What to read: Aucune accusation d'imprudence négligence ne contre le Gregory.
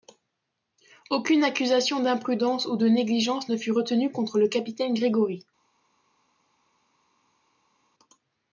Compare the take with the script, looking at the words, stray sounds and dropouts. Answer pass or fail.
fail